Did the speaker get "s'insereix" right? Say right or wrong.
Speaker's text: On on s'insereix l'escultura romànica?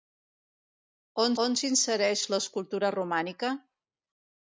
right